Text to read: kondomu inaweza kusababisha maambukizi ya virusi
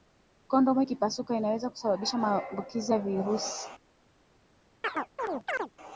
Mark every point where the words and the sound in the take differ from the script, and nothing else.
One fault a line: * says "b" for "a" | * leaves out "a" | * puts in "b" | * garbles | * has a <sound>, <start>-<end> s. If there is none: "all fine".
* puts in "ikipasuka"
* has a chirp, 4.8-5.7 s